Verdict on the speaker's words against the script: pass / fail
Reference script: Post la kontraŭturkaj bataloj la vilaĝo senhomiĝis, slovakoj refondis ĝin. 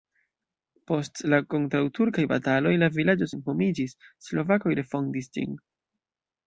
pass